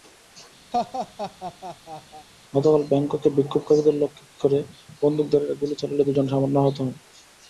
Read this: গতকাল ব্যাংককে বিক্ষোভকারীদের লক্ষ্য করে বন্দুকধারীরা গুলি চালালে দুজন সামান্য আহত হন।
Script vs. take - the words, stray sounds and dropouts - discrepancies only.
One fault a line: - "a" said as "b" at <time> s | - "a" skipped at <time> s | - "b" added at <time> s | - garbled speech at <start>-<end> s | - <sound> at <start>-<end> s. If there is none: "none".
- laugh at 0.7-2.3 s